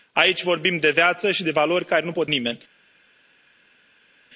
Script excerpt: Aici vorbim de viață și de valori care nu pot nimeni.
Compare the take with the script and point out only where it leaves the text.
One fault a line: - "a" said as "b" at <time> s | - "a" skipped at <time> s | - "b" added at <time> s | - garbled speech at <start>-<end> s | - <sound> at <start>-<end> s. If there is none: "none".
none